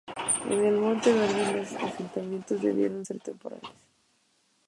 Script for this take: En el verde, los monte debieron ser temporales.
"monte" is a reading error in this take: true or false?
true